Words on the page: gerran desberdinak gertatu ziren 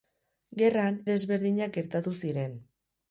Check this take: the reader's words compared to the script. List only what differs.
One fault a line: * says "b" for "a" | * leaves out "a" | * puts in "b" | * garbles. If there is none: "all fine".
all fine